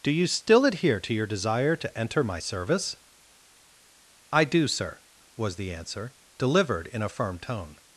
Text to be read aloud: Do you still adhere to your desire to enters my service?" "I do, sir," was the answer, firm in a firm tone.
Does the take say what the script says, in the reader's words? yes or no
no